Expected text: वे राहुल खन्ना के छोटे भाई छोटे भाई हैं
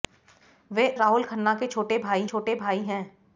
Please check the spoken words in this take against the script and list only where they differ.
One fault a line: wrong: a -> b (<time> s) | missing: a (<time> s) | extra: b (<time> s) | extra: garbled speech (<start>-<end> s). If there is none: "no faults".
no faults